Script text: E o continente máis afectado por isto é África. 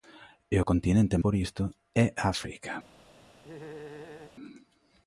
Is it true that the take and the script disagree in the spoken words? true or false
true